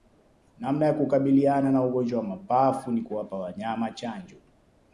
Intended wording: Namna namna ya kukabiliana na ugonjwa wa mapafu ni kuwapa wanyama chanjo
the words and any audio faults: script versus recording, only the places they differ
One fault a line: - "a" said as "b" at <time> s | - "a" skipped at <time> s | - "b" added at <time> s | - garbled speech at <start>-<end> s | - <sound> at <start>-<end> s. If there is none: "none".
- "namna" skipped at 0.8 s